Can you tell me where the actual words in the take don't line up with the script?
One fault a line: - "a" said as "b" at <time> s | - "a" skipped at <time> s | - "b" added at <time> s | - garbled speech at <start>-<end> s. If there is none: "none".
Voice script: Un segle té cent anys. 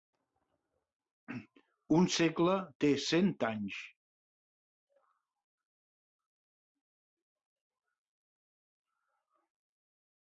none